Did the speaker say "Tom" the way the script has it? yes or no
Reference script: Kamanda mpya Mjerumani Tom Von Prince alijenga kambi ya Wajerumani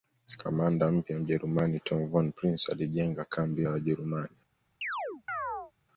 yes